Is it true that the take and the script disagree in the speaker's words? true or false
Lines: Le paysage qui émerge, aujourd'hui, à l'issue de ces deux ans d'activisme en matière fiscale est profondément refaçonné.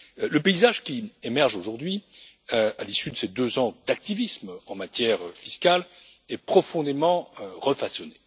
false